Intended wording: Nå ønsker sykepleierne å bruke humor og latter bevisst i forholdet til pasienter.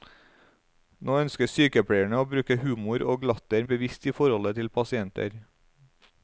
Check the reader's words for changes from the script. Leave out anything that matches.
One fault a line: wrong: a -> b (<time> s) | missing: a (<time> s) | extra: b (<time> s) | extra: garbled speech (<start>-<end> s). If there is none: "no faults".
no faults